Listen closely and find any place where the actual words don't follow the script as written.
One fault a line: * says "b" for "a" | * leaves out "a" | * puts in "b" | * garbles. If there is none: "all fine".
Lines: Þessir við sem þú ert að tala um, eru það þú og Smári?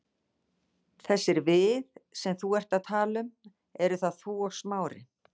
all fine